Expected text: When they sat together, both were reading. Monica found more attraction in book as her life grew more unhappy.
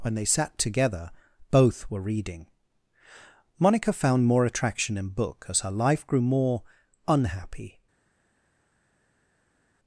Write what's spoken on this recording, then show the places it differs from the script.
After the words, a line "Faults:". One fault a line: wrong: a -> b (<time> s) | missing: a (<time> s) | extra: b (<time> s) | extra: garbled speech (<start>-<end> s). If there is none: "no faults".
When they sat together, both were reading. Monica found more attraction in book as her life grew more unhappy.
Faults:
no faults